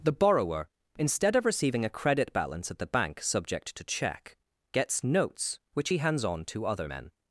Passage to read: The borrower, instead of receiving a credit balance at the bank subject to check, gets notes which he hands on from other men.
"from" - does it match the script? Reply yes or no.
no